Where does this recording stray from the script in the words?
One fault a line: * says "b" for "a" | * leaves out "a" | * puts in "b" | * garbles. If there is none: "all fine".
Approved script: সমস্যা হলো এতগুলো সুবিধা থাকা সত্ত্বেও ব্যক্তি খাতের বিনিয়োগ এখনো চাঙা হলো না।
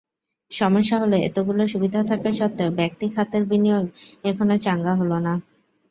all fine